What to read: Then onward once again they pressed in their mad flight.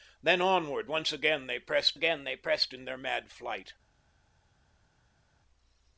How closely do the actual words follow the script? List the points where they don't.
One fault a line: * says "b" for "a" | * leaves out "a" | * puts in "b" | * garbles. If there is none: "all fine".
* puts in "again they pressed"